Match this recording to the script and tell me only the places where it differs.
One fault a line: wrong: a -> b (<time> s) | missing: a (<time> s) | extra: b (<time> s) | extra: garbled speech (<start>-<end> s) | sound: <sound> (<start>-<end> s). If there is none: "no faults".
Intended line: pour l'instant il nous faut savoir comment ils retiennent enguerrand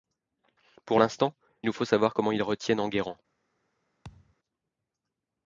missing: il (1.3 s)
sound: thud (4.0-4.4 s)